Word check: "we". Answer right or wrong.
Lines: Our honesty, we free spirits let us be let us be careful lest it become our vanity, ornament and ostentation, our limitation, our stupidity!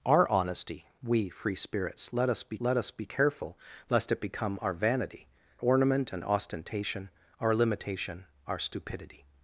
right